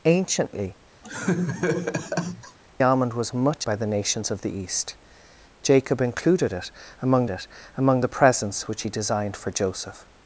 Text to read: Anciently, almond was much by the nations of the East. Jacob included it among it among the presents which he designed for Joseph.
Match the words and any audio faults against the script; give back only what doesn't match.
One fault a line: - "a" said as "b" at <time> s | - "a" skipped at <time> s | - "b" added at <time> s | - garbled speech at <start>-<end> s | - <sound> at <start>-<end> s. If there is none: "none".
- laugh at 1.0-2.6 s